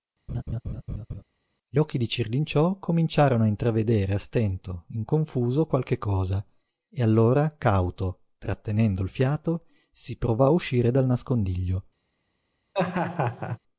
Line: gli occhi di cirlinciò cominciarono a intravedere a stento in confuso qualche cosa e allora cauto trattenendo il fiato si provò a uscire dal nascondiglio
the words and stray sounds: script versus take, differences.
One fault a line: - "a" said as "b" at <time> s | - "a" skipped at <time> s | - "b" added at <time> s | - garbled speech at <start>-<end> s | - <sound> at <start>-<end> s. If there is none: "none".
- laugh at 0.3-1.2 s
- laugh at 12.7-13.6 s